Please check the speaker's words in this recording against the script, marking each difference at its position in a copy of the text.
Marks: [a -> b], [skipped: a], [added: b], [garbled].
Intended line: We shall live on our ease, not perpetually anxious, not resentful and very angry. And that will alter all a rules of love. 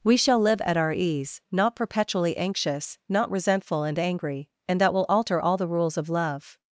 We shall live [on -> at] our ease, not perpetually anxious, not resentful and [skipped: very] angry. And that will alter all [a -> the] rules of love.